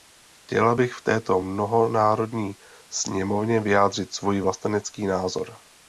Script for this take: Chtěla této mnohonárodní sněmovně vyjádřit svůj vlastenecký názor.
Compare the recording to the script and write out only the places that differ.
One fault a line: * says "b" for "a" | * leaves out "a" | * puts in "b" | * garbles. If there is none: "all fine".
* puts in "bych v"